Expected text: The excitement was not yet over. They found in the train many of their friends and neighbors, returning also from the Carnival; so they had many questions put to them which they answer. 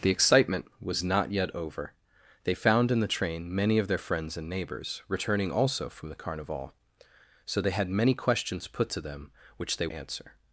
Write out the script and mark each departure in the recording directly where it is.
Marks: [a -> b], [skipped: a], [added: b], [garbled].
The excitement was not yet over. They found in the train many of their friends and neighbors, returning also from the Carnival; so they had many questions put to them which they answer.